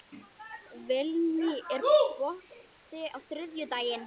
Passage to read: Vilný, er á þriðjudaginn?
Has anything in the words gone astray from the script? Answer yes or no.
yes